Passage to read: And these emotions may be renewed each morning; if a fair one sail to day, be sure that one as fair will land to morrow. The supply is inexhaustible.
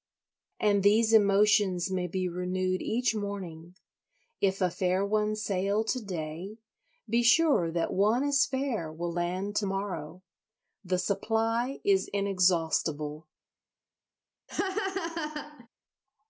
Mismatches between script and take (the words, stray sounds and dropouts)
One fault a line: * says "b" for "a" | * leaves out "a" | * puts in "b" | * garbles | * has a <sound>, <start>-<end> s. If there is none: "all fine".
* has a laugh, 14.5-15.7 s